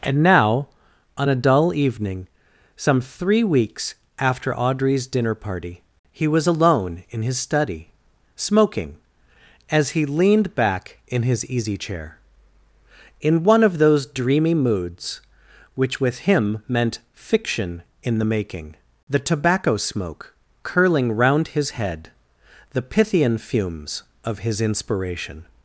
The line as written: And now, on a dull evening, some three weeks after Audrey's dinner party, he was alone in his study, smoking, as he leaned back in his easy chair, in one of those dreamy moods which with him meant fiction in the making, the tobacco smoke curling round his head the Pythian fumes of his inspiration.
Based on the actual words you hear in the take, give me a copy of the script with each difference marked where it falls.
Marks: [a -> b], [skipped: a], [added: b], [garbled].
And now, on a dull evening, some three weeks after Audrey's dinner party, he was alone in his study, smoking, as he leaned back in his easy chair, in one of those dreamy moods which with him meant fiction in the making, the tobacco smoke curling round his head the Pythian fumes of his inspiration.